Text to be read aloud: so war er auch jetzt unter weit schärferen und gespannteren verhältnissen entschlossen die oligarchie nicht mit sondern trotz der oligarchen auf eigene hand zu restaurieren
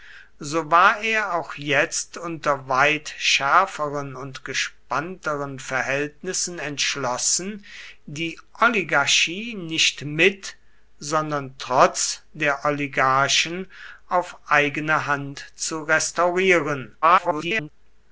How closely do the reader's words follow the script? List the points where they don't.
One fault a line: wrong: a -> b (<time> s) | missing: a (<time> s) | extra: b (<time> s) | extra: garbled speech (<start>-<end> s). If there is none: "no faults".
extra: garbled speech (17.0-17.7 s)